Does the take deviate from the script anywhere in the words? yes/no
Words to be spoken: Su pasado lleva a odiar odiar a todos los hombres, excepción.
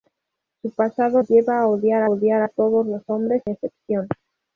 no